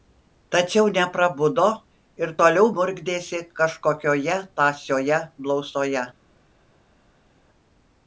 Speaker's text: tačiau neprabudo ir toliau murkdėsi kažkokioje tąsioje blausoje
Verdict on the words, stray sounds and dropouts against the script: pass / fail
pass